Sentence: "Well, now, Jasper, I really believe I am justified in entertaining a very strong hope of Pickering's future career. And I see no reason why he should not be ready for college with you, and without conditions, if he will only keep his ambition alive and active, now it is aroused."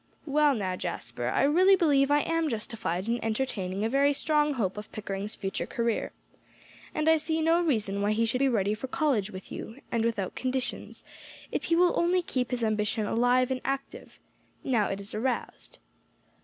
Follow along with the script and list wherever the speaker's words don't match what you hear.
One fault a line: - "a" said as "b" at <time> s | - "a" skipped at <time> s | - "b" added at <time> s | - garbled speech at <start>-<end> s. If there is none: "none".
- "not" skipped at 8.4 s